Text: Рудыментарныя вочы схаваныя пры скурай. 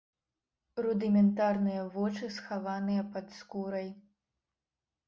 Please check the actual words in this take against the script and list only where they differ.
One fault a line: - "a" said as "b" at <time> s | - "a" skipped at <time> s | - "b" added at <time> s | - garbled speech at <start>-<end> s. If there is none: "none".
- "пры" said as "пад" at 3.1 s